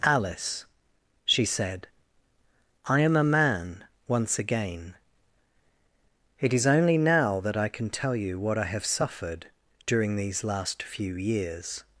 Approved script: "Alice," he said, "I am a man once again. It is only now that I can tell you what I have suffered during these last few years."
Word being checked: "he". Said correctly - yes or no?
no